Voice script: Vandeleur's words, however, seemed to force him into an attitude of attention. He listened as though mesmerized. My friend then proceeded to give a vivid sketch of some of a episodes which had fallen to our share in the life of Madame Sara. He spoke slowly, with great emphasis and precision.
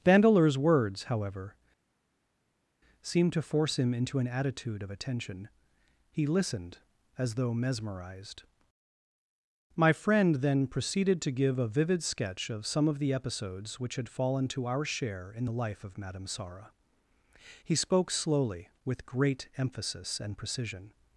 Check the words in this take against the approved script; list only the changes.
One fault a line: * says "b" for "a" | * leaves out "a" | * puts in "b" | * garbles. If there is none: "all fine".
* says "the" for "a"